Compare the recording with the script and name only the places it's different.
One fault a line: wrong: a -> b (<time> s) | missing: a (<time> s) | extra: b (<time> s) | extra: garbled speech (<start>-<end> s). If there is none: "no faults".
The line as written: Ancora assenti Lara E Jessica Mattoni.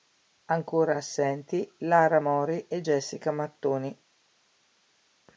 extra: Mori (2.2 s)